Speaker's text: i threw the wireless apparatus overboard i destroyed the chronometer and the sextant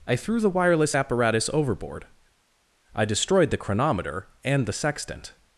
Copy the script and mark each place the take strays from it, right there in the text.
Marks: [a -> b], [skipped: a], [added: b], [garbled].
i threw the wireless apparatus overboard i destroyed the chronometer and the sextant